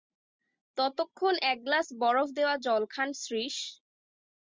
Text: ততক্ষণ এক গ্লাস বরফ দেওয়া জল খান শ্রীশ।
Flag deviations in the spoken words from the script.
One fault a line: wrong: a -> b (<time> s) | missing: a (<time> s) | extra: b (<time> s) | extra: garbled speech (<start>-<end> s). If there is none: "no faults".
no faults